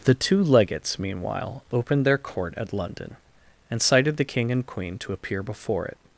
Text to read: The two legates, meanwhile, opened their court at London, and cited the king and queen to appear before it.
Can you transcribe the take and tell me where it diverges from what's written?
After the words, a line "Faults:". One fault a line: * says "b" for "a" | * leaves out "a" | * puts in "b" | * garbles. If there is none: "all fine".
The two legates, meanwhile, opened their court at London, and cited the king and queen to appear before it.
Faults:
all fine